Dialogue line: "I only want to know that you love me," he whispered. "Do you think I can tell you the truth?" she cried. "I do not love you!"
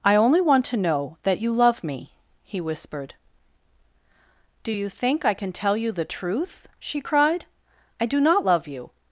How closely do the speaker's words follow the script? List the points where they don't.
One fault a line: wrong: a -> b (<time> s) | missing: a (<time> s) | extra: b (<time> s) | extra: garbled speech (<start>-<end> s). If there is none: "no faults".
no faults